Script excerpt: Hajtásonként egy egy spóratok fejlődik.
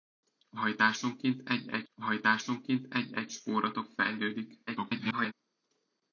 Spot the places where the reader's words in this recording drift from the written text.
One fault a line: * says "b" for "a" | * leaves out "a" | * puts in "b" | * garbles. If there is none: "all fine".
* puts in "hajtásonként egy egy"
* garbles